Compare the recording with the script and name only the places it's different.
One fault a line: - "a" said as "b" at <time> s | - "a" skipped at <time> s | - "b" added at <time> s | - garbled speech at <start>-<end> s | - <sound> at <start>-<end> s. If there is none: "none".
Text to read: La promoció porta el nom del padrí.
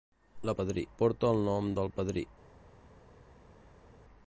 - "promoció" said as "padrí" at 0.6 s